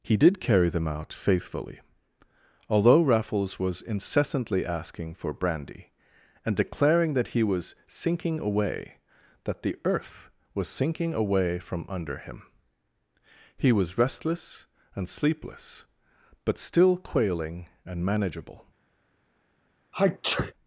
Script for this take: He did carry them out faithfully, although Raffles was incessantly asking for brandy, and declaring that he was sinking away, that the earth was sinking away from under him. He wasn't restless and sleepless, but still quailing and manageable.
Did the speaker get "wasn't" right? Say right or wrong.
wrong